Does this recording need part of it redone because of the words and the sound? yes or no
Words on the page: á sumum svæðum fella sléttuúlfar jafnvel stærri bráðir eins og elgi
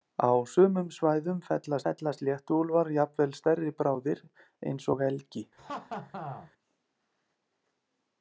yes